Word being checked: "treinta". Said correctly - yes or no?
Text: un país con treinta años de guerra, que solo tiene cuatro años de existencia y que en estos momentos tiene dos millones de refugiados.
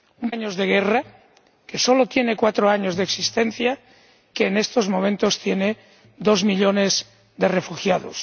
no